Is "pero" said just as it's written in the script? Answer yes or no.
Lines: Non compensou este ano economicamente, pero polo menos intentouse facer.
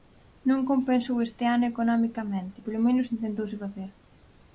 no